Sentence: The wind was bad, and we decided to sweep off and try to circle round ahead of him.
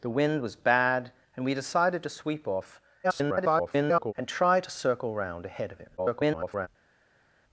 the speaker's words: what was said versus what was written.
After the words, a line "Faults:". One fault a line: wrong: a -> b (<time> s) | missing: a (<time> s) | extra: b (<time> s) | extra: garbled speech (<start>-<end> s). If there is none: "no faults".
The wind was bad, and we decided to sweep off [garbled] and try to circle round ahead of him. [garbled]
Faults:
extra: garbled speech (3.0-4.1 s)
extra: garbled speech (6.0-6.7 s)